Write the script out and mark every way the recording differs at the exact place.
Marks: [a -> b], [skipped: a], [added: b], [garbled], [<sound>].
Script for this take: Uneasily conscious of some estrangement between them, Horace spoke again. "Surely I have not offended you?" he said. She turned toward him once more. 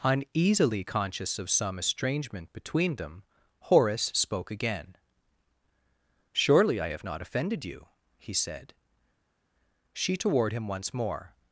Uneasily conscious of some estrangement between them, Horace spoke again. "Surely I have not offended you?" he said. She [skipped: turned] toward him once more.